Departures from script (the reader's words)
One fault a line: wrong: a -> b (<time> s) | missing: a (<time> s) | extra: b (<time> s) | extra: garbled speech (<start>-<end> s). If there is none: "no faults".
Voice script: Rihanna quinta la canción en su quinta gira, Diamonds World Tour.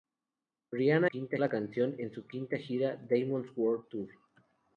no faults